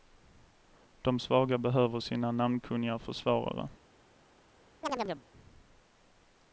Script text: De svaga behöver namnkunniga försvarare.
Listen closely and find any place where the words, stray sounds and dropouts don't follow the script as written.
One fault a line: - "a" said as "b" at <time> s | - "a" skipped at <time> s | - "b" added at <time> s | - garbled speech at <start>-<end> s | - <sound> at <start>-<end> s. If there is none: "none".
- "sina" added at 2.0 s
- chirp at 4.8-5.2 s